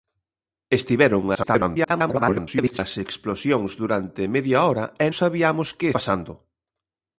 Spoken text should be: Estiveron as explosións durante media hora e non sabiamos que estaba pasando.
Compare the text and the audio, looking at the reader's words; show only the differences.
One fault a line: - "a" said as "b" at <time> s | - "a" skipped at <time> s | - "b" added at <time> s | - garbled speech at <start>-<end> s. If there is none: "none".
- garbled speech at 1.3-2.8 s
- "non" skipped at 5.1 s
- "estaba" skipped at 5.9 s